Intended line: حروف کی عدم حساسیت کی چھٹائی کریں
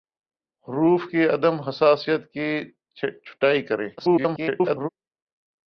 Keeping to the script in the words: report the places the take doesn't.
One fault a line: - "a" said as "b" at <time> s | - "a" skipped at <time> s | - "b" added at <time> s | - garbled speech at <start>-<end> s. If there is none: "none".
- garbled speech at 4.0-4.9 s